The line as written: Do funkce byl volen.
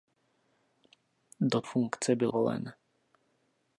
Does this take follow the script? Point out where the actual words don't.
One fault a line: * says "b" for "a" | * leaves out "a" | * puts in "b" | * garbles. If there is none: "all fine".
all fine